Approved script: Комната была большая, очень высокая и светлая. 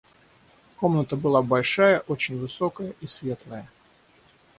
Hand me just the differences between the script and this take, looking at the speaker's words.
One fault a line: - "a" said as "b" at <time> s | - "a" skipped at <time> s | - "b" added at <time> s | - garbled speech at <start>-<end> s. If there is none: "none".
none